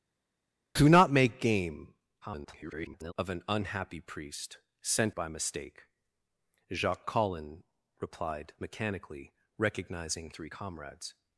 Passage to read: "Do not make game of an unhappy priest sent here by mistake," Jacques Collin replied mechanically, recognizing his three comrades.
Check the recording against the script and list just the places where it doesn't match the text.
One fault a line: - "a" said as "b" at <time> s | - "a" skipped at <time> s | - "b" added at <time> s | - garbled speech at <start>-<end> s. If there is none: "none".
- garbled speech at 2.2-3.1 s
- "here" skipped at 5.2 s
- "his" skipped at 10.3 s